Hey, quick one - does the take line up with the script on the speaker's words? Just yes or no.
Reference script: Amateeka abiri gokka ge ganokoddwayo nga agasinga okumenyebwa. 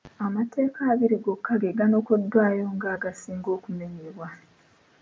yes